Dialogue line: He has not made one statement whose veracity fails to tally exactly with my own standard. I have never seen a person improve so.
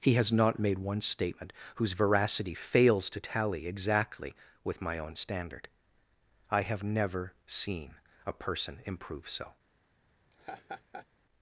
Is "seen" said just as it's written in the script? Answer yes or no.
yes